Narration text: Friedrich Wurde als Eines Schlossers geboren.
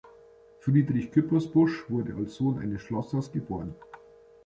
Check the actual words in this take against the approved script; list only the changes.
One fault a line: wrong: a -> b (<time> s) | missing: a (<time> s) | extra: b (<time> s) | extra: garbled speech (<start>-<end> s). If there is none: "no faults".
extra: Küppersbusch (1.1 s)
extra: Sohn (2.3 s)